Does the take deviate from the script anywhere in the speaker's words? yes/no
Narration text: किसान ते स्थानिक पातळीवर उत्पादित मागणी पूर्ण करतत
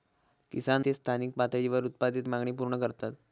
no